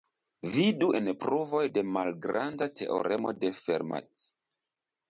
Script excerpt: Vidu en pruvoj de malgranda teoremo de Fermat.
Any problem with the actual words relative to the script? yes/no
no